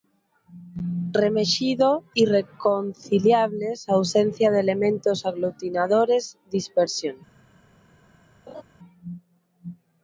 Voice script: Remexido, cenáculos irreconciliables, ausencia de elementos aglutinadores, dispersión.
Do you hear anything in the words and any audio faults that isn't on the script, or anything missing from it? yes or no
yes